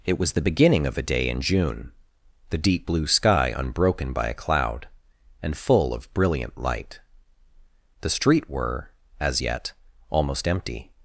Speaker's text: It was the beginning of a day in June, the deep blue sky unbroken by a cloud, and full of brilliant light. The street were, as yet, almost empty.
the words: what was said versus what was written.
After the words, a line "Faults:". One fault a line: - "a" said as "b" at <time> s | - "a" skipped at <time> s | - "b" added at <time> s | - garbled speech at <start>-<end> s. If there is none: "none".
It was the beginning of a day in June, the deep blue sky unbroken by a cloud, and full of brilliant light. The street were, as yet, almost empty.
Faults:
none